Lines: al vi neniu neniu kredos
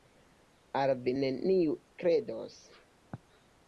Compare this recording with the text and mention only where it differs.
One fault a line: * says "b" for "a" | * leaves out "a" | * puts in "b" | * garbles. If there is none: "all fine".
* leaves out "neniu"